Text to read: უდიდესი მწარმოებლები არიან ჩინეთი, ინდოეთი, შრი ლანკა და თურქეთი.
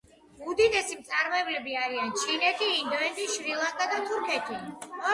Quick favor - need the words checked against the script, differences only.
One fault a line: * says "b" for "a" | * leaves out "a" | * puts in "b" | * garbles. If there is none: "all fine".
all fine